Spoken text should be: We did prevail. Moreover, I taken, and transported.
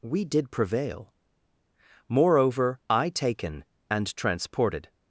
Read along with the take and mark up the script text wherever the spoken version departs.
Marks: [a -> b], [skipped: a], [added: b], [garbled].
We did prevail. Moreover, I taken, and transported.